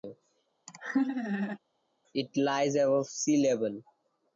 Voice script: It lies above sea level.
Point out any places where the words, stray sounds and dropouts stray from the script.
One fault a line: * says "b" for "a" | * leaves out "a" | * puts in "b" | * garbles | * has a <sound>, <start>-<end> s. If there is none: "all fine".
* has a laugh, 0.7-1.6 s